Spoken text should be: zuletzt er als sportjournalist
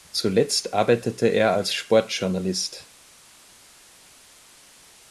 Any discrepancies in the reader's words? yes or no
yes